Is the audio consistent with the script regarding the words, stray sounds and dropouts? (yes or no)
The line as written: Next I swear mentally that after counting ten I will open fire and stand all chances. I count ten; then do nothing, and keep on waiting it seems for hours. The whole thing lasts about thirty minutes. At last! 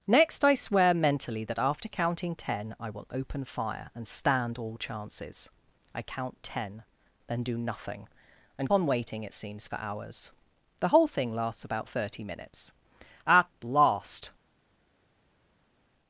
no